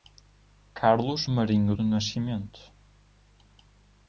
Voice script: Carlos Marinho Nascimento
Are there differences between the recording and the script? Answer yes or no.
yes